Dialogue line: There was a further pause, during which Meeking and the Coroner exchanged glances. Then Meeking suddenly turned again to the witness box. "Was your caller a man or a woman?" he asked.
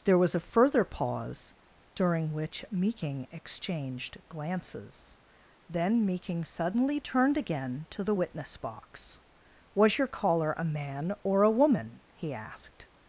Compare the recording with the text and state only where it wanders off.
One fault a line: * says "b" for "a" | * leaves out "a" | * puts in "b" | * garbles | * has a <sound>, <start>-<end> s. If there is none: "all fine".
* leaves out "and the Coroner"